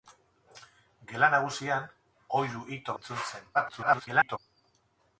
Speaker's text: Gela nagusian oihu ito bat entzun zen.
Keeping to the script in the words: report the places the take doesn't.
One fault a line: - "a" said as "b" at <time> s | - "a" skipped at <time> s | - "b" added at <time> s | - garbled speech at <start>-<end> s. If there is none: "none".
- "bat" skipped at 3.0 s
- garbled speech at 3.5-4.4 s